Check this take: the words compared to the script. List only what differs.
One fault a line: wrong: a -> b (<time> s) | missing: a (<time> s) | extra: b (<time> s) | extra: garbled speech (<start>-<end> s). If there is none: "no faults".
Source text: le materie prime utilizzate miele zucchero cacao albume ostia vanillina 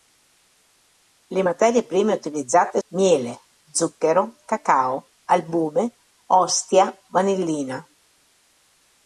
no faults